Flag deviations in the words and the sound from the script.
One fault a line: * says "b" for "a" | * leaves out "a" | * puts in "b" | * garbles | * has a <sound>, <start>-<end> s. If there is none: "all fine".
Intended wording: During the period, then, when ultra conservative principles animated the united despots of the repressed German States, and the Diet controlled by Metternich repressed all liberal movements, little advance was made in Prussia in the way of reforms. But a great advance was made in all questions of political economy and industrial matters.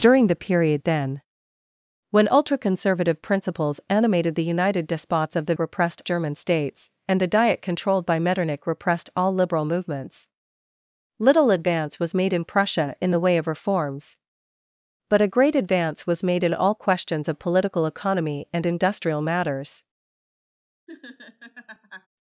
* has a laugh, 20.9-22.1 s